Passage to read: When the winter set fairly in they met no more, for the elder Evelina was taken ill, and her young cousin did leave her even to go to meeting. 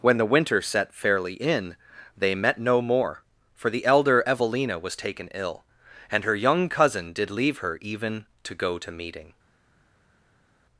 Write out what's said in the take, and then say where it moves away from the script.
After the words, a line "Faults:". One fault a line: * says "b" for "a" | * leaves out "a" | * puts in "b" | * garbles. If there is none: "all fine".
When the winter set fairly in they met no more, for the elder Evelina was taken ill, and her young cousin did leave her even to go to meeting.
Faults:
all fine